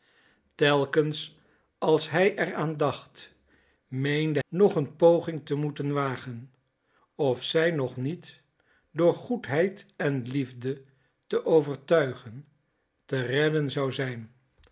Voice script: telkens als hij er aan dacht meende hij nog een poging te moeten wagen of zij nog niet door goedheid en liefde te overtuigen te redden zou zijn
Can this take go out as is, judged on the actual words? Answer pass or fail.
fail